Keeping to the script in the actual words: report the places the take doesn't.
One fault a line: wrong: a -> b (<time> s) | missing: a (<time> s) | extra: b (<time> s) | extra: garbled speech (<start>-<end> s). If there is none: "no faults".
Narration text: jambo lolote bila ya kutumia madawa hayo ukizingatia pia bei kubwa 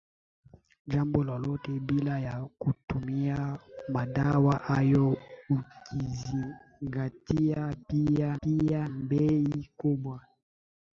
extra: pia (8.4 s)